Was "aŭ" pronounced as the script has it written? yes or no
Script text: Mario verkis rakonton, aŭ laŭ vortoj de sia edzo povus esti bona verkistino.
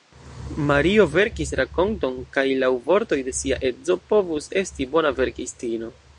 no